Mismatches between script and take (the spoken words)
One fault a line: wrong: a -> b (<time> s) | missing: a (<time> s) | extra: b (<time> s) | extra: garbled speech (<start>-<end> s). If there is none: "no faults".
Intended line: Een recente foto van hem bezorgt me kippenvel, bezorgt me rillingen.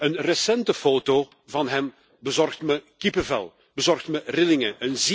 no faults